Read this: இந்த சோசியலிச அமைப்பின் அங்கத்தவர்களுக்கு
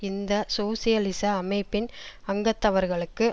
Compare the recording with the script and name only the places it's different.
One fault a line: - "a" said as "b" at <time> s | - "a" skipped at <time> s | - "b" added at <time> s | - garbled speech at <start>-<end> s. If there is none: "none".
none